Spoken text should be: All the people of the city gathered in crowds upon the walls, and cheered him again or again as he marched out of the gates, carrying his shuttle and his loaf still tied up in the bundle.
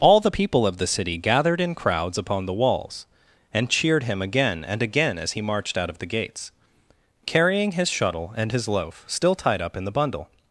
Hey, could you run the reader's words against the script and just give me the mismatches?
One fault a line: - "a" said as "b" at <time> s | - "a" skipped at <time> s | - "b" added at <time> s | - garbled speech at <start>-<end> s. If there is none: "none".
- "or" said as "and" at 4.6 s